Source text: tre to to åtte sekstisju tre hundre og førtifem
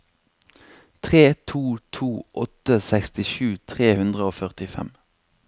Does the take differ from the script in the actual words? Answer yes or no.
no